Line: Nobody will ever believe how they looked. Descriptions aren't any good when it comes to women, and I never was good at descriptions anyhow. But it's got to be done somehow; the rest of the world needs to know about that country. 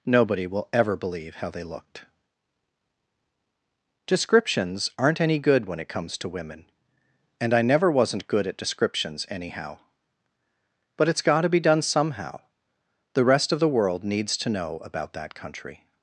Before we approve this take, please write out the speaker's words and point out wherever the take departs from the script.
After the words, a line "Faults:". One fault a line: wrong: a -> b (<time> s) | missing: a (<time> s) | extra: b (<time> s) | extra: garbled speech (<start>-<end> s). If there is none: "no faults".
Nobody will ever believe how they looked. Descriptions aren't any good when it comes to women, and I never wasn't good at descriptions anyhow. But it's got to be done somehow; the rest of the world needs to know about that country.
Faults:
wrong: was -> wasn't (7.9 s)